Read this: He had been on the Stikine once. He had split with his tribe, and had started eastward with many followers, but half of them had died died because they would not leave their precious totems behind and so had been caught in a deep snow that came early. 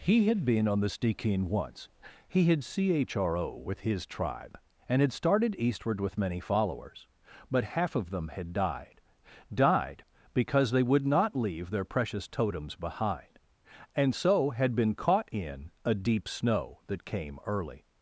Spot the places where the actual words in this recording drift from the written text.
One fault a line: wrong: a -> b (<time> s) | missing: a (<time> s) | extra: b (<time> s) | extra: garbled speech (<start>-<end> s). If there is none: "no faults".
wrong: split -> chro (2.6 s)